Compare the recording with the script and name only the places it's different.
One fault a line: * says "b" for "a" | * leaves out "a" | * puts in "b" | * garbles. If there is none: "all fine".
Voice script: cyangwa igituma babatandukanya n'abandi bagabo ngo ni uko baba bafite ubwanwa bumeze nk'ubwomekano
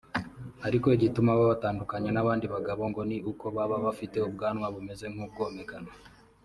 * says "ariko" for "cyangwa"